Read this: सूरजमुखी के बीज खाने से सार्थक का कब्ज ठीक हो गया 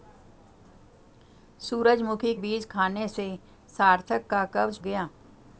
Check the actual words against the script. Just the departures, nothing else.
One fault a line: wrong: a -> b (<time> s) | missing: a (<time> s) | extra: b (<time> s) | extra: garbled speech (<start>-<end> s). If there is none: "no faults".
missing: के (2.3 s)
missing: ठीक हो (4.8 s)